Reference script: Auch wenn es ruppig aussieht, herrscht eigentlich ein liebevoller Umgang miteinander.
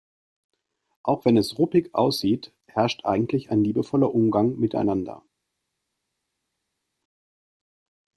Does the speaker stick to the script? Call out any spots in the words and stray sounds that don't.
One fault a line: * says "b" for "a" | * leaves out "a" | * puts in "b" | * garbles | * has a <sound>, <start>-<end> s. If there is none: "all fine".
all fine